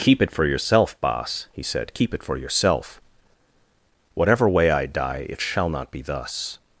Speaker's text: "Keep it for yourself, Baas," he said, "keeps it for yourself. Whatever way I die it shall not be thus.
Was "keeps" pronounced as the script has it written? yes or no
no